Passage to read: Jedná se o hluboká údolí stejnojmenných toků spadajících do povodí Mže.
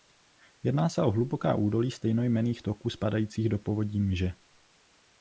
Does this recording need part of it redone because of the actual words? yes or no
no